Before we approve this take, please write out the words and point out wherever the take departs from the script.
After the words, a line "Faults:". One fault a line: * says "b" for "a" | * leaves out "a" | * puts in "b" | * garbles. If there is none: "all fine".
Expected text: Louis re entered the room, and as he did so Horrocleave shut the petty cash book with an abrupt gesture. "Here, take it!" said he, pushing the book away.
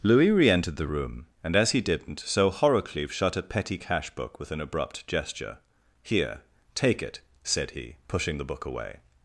Louis re entered the room, and as he didn't so Horrocleave shut a petty cash book with an abrupt gesture. "Here, take it!" said he, pushing the book away.
Faults:
* says "didn't" for "did"
* says "a" for "the"